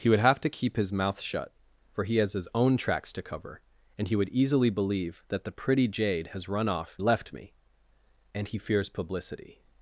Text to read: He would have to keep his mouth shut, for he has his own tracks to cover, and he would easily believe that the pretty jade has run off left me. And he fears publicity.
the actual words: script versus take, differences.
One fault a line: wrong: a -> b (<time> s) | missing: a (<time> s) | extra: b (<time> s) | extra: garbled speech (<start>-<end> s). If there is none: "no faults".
no faults